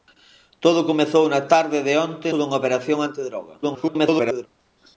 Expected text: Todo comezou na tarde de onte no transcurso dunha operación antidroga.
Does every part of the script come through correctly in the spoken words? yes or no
no